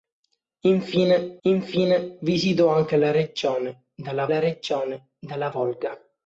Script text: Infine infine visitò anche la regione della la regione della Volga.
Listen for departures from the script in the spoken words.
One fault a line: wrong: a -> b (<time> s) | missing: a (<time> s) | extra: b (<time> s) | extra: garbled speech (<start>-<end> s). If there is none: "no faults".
no faults